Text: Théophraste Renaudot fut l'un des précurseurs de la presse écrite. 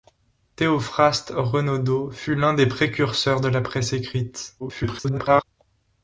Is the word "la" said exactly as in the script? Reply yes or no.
yes